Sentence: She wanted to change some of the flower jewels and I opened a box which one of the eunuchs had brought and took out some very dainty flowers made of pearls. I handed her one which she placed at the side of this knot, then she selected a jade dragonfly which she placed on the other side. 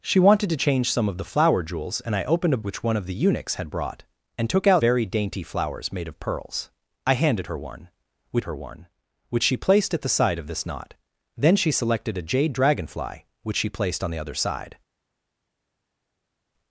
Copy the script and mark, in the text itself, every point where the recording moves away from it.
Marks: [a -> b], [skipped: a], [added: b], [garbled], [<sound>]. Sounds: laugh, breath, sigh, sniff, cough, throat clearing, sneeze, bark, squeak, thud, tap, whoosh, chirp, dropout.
She wanted to change some of the flower jewels and I opened a [skipped: box] which one of the eunuchs had brought and took out [skipped: some] very dainty flowers made of pearls. I handed her one which [added: her one which] she placed at the side of this knot, then she selected a jade dragonfly which she placed on the other side.